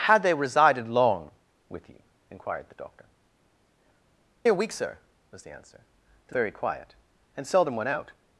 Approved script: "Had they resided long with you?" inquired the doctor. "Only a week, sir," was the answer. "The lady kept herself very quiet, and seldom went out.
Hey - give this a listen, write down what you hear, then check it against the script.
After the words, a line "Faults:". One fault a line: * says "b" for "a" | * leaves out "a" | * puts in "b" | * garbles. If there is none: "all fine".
"Had they resided long with you?" inquired the doctor. "A week, sir," was the answer. "The very quiet, and seldom went out.
Faults:
* leaves out "Only"
* leaves out "lady kept herself"